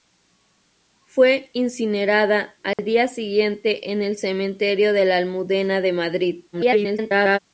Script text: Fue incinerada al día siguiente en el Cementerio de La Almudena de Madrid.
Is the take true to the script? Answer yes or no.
no